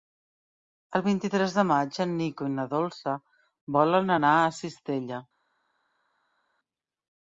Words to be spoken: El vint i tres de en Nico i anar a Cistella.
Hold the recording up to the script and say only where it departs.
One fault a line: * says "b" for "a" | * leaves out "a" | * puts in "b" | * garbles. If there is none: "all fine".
* puts in "maig"
* puts in "na Dolça volen"